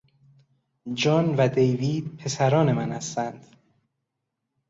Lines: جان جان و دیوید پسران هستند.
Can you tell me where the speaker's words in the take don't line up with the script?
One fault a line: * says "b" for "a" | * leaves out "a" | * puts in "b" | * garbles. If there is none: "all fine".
* leaves out "جان"
* puts in "من"